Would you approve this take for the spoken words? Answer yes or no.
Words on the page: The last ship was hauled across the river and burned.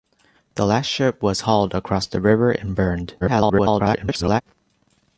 no